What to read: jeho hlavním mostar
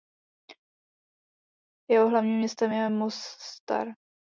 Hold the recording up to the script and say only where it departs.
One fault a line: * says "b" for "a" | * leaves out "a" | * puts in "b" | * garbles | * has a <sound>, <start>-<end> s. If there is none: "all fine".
* puts in "městem je"